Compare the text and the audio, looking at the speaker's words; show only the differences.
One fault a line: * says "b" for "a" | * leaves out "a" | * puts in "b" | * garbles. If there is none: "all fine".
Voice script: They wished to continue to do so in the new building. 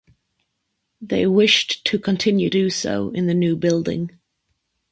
* leaves out "to"